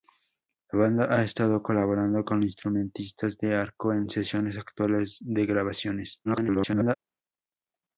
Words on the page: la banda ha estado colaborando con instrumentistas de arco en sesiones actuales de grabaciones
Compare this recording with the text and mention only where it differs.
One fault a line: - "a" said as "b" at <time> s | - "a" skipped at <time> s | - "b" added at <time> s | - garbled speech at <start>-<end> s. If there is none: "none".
- garbled speech at 6.2-7.0 s